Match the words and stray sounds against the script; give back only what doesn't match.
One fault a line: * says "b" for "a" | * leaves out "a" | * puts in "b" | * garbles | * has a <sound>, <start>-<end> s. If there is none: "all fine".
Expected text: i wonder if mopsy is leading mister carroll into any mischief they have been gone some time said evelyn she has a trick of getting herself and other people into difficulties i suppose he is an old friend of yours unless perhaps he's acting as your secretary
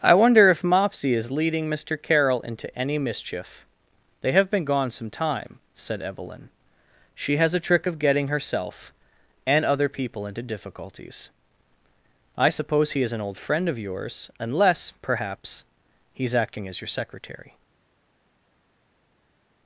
all fine